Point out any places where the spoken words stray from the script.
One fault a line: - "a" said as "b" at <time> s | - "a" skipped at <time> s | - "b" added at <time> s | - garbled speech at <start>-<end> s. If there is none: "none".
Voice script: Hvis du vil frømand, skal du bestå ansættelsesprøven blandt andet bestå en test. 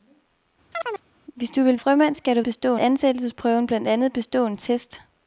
none